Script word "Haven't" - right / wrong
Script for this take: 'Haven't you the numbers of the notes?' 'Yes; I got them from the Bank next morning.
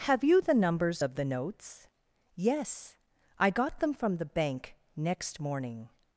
wrong